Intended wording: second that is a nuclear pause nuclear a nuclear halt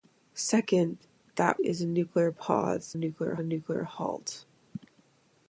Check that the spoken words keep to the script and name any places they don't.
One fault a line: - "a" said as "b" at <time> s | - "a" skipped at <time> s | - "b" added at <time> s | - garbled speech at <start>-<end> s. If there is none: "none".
none